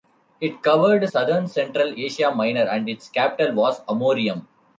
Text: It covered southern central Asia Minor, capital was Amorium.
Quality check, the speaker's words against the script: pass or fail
fail